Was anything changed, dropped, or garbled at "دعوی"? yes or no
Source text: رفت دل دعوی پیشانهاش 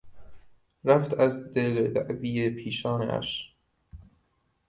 no